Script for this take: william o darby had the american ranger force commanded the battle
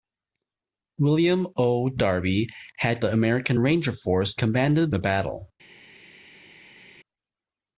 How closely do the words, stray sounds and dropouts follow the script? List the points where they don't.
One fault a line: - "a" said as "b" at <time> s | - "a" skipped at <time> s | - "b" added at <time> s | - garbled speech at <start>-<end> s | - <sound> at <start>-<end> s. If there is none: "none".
none